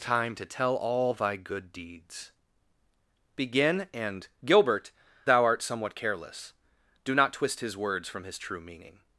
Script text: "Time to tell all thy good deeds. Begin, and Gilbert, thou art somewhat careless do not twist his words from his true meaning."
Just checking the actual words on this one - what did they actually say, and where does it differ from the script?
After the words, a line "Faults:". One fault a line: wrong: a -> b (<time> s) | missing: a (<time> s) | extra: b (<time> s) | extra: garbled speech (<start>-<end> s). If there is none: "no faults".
"Time to tell all thy good deeds. Begin, and Gilbert, thou art somewhat careless do not twist his words from his true meaning."
Faults:
no faults